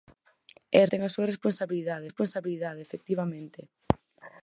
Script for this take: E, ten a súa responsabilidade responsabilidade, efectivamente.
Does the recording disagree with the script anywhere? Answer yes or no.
no